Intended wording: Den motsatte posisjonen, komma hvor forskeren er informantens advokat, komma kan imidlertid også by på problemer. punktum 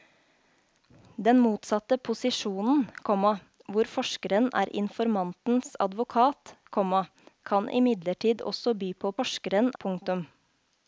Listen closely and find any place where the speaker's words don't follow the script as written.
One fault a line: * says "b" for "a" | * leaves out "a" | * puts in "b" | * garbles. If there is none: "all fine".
* says "forskeren" for "problemer"